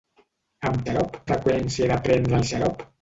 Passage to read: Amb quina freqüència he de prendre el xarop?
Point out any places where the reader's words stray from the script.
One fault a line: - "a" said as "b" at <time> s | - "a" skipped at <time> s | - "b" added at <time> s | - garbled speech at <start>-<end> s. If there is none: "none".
- "quina" said as "xarop" at 0.9 s